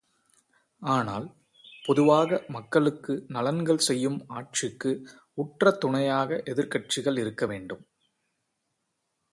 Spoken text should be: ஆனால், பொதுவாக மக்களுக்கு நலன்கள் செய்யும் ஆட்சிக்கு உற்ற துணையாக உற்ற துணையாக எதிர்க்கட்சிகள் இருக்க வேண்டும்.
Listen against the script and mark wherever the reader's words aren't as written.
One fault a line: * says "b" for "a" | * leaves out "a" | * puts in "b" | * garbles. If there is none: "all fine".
* leaves out "உற்ற துணையாக"